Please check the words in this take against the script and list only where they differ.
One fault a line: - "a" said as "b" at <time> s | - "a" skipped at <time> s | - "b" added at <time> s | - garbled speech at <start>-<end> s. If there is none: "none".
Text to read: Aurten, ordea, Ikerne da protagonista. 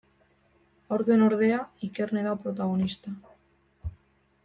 none